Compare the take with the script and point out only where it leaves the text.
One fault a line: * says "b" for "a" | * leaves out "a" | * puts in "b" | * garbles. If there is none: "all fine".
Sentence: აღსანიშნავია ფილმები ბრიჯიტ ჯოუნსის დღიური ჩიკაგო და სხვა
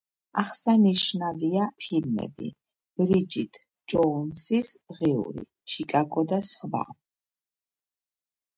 all fine